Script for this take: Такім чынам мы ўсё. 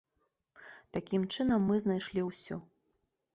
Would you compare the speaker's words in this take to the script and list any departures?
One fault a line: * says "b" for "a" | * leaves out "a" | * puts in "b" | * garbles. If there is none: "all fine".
* puts in "знайшлі"